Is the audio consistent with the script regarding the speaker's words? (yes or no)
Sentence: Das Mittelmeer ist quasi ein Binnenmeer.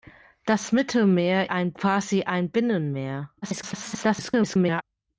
no